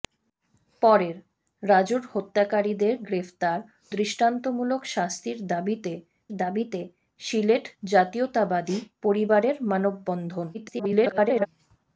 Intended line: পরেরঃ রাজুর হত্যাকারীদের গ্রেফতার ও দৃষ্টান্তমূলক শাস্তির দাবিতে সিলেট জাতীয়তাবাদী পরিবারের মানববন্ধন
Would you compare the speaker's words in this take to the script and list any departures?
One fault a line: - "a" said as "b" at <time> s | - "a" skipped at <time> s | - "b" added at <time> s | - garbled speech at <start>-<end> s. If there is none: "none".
- "ও" skipped at 3.6 s
- "দাবিতে" added at 6.4 s
- garbled speech at 10.5-11.5 s